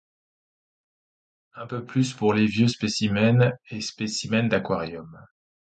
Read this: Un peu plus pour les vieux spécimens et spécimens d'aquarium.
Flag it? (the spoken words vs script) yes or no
no